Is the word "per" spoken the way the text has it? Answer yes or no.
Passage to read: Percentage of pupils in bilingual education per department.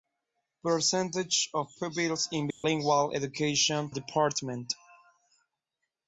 no